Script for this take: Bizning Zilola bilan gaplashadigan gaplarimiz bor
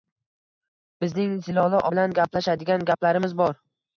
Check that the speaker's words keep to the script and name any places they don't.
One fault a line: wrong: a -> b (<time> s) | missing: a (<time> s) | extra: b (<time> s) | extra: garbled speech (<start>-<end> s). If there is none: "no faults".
no faults